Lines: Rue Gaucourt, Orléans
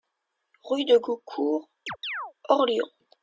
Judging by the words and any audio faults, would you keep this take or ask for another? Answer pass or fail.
fail